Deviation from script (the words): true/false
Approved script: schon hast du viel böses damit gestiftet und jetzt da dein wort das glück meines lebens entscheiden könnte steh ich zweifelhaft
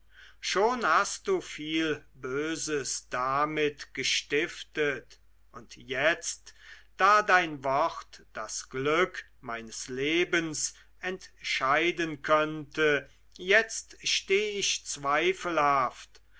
true